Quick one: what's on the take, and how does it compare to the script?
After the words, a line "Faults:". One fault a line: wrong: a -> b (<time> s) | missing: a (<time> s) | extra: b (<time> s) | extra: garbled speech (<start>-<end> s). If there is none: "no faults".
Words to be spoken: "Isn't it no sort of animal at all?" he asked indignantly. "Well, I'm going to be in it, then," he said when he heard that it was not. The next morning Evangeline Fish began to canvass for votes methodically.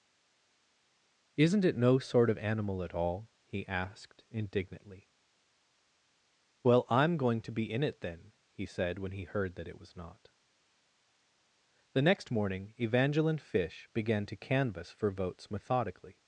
"Isn't it no sort of animal at all?" he asked indignantly. "Well, I'm going to be in it, then," he said when he heard that it was not. The next morning Evangeline Fish began to canvass for votes methodically.
Faults:
no faults